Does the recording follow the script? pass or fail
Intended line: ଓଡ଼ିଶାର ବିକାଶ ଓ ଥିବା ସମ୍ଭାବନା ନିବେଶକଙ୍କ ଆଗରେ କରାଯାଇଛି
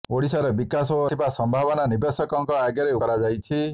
pass